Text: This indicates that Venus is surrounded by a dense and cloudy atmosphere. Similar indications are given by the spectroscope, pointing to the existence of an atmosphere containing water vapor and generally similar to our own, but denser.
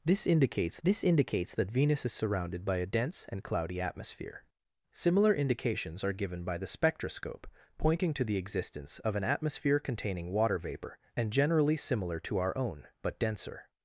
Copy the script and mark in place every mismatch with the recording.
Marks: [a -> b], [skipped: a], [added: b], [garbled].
This indicates [added: this indicates] that Venus is surrounded by a dense and cloudy atmosphere. Similar indications are given by the spectroscope, pointing to the existence of an atmosphere containing water vapor and generally similar to our own, but denser.